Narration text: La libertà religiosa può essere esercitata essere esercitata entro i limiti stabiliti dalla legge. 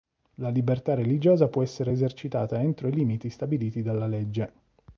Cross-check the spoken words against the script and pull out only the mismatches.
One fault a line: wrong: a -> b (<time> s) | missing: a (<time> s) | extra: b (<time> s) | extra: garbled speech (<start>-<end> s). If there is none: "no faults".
missing: essere esercitata (2.6 s)